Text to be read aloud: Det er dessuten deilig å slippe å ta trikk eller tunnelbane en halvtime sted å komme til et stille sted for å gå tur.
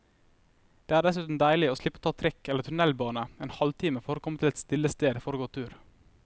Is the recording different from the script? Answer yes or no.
yes